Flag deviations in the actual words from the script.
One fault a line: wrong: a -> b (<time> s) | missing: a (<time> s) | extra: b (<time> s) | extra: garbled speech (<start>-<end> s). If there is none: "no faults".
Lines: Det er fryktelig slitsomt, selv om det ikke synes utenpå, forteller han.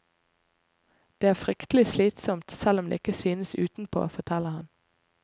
no faults